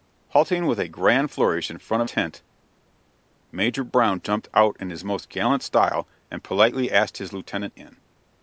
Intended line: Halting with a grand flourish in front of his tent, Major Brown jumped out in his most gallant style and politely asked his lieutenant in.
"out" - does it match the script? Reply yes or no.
yes